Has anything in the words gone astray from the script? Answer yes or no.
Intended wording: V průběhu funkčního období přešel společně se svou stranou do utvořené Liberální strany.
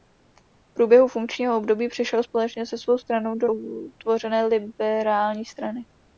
no